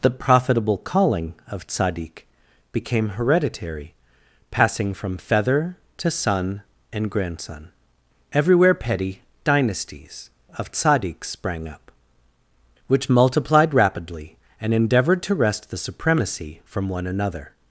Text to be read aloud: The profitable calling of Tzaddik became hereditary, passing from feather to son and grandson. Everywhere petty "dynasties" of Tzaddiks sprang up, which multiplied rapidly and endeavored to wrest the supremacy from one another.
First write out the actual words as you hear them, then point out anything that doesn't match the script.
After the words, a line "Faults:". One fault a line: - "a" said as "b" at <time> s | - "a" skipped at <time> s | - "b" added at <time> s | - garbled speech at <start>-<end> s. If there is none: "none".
The profitable calling of Tzaddik became hereditary, passing from feather to son and grandson. Everywhere petty "dynasties" of Tzaddiks sprang up, which multiplied rapidly and endeavored to wrest the supremacy from one another.
Faults:
none